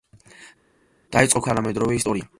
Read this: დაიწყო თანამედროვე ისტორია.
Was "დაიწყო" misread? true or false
false